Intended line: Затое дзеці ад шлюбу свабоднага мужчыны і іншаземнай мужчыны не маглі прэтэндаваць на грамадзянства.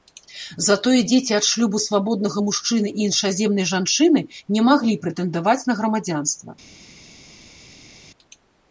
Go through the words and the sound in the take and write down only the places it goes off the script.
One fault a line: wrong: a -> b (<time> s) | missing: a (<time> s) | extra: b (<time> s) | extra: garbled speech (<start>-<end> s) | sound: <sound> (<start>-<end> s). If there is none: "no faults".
wrong: мужчыны -> жанчыны (3.7 s)